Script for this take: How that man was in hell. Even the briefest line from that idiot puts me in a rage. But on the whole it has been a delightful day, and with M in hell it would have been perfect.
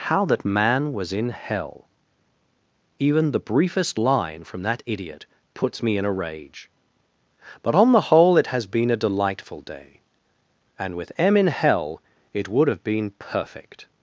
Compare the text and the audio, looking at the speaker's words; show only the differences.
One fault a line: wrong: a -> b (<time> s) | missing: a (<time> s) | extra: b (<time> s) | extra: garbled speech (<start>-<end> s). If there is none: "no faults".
no faults